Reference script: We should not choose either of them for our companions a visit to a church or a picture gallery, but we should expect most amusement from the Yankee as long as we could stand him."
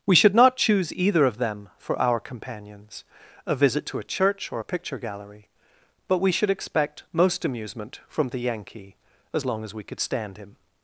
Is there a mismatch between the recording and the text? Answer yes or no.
no